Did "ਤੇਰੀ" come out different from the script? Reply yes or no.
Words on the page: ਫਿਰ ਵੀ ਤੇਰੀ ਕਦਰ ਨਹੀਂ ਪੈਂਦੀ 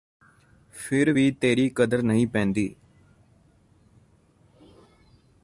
no